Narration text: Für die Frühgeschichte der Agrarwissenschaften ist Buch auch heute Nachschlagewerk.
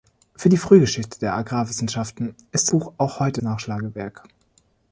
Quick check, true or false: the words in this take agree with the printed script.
true